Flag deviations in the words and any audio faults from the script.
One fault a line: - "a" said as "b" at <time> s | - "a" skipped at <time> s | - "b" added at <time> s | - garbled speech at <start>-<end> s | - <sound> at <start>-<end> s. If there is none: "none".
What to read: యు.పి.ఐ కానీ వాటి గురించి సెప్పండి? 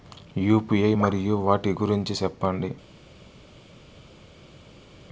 - "కానీ" said as "మరియు" at 0.9 s